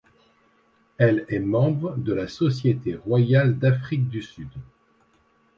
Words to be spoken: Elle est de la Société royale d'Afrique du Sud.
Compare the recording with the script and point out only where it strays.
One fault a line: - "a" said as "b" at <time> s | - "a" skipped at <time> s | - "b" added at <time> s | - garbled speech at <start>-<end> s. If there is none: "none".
- "membre" added at 1.4 s